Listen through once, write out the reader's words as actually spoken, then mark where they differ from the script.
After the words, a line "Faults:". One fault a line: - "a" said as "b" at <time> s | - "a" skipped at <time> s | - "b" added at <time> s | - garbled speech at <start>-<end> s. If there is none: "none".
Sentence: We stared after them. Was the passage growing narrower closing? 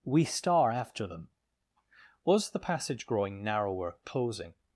We star after them. Was the passage growing narrower closing?
Faults:
- "stared" said as "star" at 0.2 s